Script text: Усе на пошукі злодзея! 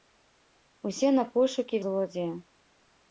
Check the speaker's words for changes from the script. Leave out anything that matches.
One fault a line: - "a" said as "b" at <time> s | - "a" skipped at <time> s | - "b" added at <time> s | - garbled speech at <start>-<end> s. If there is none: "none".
none